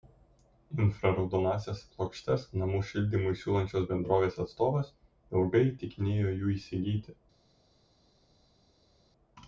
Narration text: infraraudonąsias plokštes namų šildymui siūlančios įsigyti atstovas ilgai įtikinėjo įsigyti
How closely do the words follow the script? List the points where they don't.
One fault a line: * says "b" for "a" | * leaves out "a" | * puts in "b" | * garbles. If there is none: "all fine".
* says "bendrovės" for "įsigyti"
* puts in "jų"